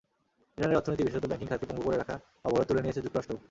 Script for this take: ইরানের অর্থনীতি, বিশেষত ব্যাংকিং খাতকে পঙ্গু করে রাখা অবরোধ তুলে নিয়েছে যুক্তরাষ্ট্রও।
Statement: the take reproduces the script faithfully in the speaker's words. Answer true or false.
true